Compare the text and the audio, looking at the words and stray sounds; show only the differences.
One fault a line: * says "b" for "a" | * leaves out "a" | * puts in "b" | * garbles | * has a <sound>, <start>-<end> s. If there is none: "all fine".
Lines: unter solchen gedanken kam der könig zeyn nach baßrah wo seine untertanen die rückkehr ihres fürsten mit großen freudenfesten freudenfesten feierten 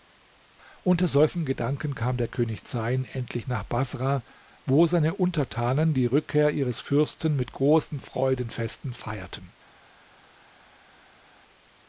* puts in "endlich"
* leaves out "freudenfesten"